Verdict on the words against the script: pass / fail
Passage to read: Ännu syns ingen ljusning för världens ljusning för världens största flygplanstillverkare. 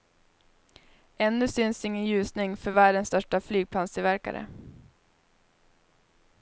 fail